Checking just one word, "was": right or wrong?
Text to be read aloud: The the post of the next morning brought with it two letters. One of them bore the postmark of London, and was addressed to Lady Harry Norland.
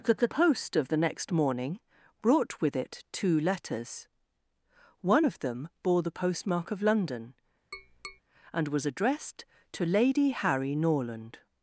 right